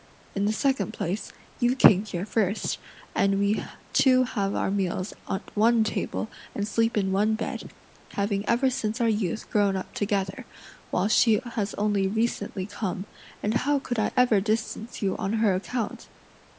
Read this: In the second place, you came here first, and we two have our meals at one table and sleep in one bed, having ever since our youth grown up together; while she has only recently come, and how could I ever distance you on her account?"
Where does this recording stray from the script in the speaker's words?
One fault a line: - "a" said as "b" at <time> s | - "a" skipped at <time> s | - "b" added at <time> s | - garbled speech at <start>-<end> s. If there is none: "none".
none